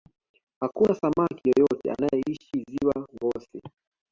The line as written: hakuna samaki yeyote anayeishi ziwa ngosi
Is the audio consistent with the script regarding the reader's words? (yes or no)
yes